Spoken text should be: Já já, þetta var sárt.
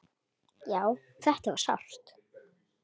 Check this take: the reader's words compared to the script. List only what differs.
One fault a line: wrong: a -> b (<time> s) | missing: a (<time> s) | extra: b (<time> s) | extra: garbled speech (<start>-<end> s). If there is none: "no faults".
missing: já (0.8 s)